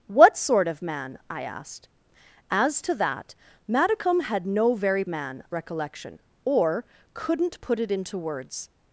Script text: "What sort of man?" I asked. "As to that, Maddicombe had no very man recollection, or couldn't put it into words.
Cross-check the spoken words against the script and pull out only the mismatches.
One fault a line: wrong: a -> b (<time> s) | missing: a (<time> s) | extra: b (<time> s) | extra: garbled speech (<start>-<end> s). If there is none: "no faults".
no faults